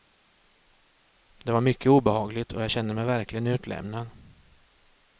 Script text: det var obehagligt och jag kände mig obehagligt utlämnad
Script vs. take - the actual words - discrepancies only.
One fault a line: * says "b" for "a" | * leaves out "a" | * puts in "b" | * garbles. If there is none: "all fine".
* puts in "mycket"
* says "verkligen" for "obehagligt"